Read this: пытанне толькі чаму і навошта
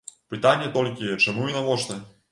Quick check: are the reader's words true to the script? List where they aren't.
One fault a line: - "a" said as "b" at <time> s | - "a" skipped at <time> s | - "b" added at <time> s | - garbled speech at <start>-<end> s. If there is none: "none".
none